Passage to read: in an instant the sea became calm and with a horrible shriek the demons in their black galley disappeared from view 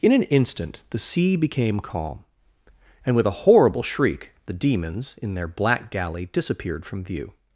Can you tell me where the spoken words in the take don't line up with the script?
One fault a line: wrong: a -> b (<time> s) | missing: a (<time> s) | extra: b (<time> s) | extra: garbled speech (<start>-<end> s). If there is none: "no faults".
no faults